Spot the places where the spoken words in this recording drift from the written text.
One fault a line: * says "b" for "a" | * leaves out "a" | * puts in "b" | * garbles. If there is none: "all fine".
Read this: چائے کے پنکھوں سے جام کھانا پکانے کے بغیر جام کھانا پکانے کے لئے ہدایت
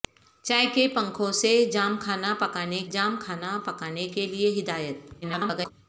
* leaves out "کے بغیر"
* garbles